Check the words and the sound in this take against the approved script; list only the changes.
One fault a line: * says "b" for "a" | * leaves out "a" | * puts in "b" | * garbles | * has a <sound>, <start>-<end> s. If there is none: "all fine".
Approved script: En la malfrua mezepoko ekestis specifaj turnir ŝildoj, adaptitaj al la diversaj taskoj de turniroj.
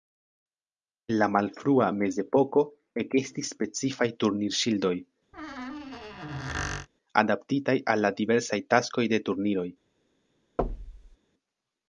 * has a squeak, 5.3-6.9 s
* has a thud, 10.6-11.2 s